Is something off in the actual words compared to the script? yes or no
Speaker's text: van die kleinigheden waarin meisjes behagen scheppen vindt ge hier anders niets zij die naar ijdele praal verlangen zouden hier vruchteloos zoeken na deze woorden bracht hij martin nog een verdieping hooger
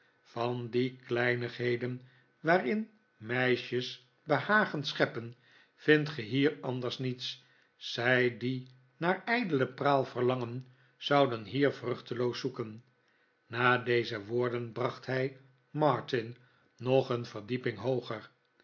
no